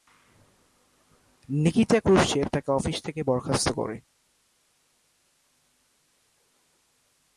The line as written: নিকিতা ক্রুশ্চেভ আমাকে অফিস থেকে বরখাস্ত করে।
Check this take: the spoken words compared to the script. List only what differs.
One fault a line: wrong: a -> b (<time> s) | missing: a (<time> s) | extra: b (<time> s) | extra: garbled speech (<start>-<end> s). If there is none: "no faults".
wrong: আমাকে -> তাকে (2.5 s)